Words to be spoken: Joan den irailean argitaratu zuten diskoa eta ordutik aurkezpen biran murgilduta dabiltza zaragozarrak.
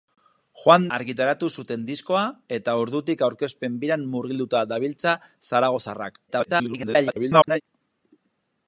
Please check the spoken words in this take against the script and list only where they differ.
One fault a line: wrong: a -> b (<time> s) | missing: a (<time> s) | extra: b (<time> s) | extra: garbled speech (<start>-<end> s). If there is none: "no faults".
missing: den irailean (0.8 s)
extra: garbled speech (6.3-7.6 s)